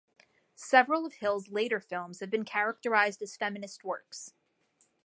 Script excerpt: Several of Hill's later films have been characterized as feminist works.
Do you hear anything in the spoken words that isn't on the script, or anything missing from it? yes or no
no